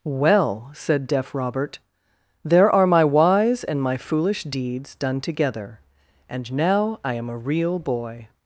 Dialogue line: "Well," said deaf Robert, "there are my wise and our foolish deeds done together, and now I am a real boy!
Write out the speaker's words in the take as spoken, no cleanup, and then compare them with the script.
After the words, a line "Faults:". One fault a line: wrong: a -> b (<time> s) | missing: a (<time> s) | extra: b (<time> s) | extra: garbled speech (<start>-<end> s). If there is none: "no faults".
"Well," said deaf Robert, "there are my wise and my foolish deeds done together, and now I am a real boy!
Faults:
wrong: our -> my (3.8 s)